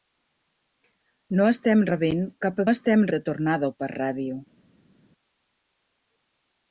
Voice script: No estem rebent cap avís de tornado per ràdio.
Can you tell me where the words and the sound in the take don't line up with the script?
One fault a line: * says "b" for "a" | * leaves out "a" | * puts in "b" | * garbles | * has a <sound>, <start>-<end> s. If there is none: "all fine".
* says "estem" for "avís"